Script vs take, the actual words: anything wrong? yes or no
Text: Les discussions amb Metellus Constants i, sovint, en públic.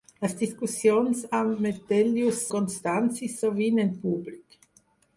no